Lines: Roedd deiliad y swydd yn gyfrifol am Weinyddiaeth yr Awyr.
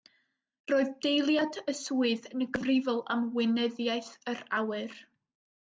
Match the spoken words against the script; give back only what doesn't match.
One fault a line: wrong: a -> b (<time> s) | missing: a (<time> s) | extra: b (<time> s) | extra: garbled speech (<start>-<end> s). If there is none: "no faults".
no faults